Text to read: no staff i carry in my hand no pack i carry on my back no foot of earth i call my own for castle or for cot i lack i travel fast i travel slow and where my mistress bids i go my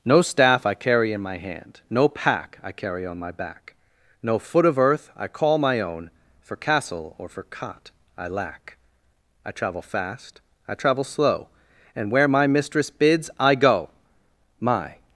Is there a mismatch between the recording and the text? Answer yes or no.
no